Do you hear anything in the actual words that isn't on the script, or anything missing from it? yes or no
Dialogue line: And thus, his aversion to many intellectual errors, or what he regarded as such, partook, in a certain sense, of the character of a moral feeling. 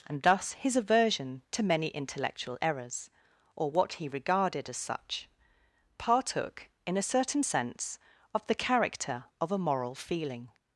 no